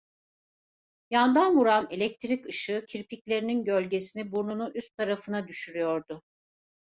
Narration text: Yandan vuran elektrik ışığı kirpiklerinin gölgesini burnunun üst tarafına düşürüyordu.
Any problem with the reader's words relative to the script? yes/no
no